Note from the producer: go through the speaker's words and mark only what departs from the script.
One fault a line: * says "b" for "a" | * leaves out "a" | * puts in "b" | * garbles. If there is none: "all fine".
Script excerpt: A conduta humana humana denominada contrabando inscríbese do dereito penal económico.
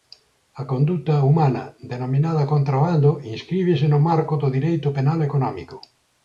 * leaves out "humana"
* puts in "no marco"